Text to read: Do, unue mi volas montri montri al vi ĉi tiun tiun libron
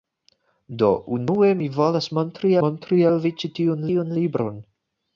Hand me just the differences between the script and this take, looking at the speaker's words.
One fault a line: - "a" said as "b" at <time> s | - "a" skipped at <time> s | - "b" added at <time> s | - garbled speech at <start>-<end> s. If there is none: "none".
none